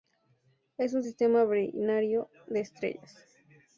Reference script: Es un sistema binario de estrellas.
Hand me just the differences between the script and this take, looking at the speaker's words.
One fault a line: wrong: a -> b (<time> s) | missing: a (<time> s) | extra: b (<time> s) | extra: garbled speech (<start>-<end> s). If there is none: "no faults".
no faults